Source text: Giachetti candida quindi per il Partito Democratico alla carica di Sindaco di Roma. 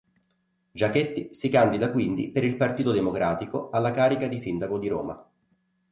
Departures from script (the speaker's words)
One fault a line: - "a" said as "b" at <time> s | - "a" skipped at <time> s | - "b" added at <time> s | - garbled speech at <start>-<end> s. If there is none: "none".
- "si" added at 1.4 s